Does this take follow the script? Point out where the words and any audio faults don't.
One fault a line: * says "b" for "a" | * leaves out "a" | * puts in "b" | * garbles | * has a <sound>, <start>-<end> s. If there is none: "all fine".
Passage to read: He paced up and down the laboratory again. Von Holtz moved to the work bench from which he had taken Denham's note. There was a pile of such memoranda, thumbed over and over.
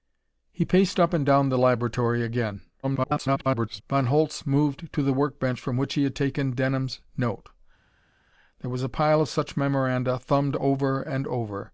* garbles